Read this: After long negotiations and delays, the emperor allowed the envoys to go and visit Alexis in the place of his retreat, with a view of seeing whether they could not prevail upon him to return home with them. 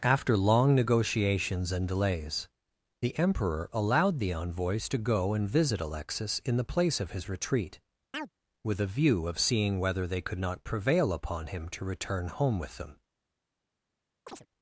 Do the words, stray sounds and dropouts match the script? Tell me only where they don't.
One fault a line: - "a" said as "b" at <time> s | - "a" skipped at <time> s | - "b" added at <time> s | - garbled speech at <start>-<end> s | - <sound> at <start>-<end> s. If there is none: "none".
- chirp at 8.1-8.3 s
- chirp at 14.3-14.5 s